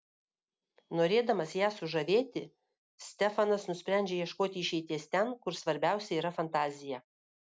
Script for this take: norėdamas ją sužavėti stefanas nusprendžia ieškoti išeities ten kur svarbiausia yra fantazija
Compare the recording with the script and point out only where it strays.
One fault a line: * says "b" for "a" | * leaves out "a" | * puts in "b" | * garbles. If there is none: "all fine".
all fine